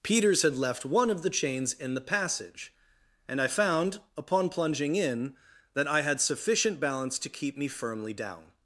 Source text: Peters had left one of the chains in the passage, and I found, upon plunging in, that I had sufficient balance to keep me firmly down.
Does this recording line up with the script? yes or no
yes